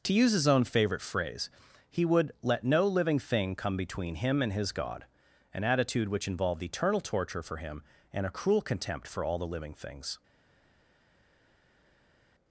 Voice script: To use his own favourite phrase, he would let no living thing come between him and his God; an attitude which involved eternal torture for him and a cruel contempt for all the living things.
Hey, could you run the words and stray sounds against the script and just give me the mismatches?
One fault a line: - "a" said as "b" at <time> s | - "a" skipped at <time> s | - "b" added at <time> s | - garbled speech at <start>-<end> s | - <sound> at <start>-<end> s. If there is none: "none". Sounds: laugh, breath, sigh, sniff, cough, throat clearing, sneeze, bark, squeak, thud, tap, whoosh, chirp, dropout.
none